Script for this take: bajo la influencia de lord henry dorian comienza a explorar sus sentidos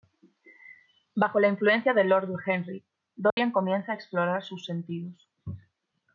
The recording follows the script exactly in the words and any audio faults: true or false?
false